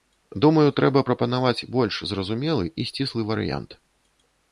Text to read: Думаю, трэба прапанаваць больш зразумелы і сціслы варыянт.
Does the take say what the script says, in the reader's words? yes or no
yes